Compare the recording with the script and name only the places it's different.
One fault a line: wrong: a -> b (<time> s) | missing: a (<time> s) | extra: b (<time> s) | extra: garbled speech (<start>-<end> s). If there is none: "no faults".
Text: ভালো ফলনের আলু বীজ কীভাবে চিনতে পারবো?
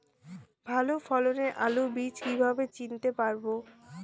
no faults